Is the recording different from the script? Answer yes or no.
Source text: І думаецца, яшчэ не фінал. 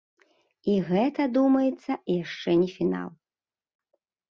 yes